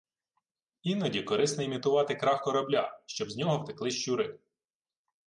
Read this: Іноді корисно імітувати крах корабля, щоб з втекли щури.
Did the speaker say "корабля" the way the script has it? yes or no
yes